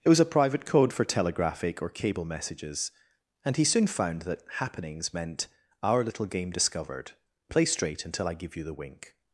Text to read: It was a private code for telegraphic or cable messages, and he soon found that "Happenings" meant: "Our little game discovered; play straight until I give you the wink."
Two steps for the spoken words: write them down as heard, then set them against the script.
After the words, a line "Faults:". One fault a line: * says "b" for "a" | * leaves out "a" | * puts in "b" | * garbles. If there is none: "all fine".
It was a private code for telegraphic or cable messages, and he soon found that "Happenings" meant: "Our little game discovered; play straight until I give you the wink."
Faults:
all fine